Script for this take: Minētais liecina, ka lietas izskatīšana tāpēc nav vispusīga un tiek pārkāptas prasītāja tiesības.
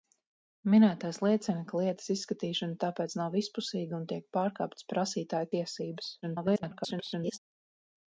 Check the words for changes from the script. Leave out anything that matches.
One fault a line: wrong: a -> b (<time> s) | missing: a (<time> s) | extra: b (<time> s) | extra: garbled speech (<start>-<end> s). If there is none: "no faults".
extra: garbled speech (6.2-7.4 s)